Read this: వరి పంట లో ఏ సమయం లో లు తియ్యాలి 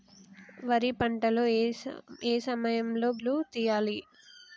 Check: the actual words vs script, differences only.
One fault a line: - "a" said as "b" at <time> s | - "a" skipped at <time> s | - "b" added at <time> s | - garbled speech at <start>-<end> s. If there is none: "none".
none